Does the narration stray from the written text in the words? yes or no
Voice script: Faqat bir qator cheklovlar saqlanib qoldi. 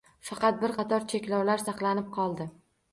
no